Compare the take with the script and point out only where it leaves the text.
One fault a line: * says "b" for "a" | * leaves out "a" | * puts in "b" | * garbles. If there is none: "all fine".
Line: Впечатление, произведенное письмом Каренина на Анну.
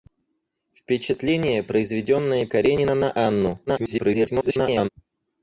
* leaves out "письмом"
* garbles